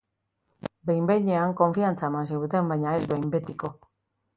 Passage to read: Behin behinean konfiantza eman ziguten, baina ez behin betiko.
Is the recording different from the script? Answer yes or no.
no